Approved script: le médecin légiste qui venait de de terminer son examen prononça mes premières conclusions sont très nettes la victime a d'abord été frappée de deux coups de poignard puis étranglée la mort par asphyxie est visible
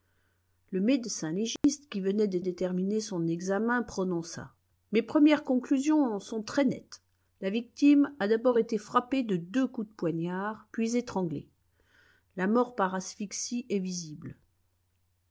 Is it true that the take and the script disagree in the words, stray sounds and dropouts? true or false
true